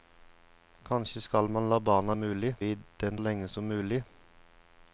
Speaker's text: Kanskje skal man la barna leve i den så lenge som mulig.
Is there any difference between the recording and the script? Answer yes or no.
yes